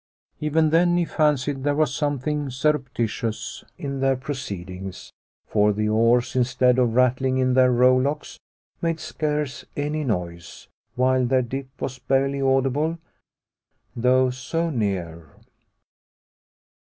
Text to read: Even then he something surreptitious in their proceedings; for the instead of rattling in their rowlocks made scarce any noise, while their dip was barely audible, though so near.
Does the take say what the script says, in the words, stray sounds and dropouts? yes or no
no